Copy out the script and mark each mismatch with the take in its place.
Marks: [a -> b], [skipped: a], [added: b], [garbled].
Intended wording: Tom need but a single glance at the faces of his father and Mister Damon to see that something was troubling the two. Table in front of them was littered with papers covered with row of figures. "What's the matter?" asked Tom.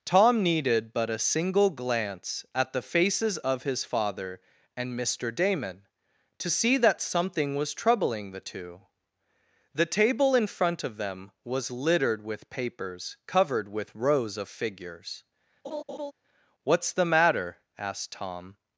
Tom [need -> needed] but a single glance at the faces of his father and Mister Damon to see that something was troubling the two. [added: The] Table in front of them was littered with papers covered with [row -> rows] of figures. "What's the matter?" asked Tom.